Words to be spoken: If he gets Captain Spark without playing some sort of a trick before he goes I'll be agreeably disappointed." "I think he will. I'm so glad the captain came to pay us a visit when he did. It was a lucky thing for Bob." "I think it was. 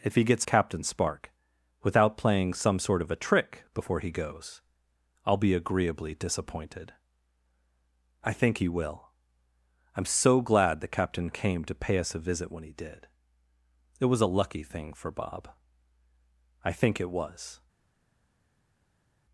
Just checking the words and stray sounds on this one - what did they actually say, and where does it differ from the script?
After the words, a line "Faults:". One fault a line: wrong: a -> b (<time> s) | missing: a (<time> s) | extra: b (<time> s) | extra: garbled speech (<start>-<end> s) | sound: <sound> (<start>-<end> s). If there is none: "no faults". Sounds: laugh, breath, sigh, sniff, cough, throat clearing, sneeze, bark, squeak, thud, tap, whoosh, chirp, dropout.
If he gets Captain Spark without playing some sort of a trick before he goes I'll be agreeably disappointed." "I think he will. I'm so glad the captain came to pay us a visit when he did. It was a lucky thing for Bob." "I think it was.
Faults:
no faults